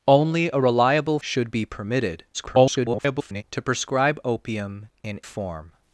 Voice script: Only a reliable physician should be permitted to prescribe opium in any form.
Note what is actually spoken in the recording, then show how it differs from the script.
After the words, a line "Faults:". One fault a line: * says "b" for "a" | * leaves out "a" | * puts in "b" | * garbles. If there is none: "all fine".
Only a reliable should be permitted [garbled] to prescribe opium in form.
Faults:
* leaves out "physician"
* garbles
* leaves out "any"